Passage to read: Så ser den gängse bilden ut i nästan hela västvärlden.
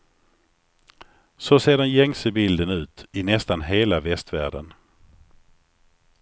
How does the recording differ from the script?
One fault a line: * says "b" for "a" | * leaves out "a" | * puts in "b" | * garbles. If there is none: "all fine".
all fine